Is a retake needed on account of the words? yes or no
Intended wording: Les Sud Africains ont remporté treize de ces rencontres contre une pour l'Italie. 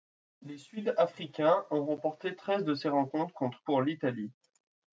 yes